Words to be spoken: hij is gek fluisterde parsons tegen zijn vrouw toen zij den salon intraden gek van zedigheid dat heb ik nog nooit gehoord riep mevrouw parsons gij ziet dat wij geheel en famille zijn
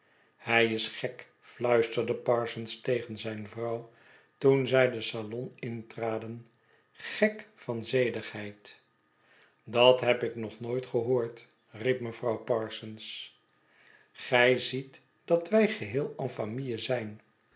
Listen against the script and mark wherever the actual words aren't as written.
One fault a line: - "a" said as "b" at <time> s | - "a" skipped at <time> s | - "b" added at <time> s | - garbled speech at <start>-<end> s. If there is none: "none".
none